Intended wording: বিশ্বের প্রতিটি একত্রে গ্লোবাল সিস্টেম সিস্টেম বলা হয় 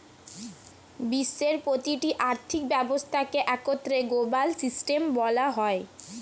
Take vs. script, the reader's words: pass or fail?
fail